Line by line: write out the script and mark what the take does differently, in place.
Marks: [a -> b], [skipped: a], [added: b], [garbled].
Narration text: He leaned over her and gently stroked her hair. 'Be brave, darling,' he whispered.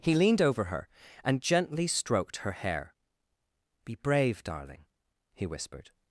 He leaned over her and gently stroked her hair. 'Be brave, darling,' he whispered.